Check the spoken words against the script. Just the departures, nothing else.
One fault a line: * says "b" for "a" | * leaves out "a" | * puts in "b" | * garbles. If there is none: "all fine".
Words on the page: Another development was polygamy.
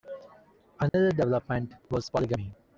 all fine